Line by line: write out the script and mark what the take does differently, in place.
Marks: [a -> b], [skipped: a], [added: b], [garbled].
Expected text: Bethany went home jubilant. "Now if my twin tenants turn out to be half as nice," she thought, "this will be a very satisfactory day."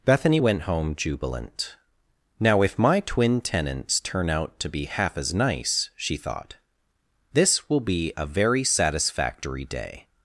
Bethany went home jubilant. "Now if my twin tenants turn out to be half as nice," she thought, "this will be a very satisfactory day."